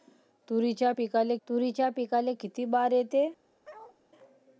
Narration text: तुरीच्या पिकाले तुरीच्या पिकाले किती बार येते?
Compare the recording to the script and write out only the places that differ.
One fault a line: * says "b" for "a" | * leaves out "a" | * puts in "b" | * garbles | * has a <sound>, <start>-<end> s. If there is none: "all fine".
* has a bark, 3.6-4.0 s